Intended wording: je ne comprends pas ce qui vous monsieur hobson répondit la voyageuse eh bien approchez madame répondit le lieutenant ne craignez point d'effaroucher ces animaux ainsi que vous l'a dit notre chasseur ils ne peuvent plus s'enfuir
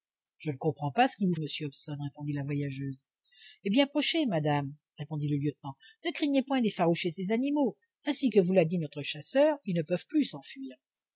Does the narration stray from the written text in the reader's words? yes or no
no